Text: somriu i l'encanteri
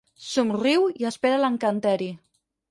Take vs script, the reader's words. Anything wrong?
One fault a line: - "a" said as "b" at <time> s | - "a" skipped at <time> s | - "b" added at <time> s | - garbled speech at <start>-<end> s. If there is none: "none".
- "espera" added at 1.1 s